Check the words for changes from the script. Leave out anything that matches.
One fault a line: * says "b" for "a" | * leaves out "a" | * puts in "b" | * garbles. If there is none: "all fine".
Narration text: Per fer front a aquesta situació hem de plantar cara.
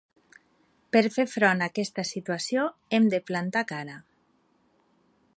all fine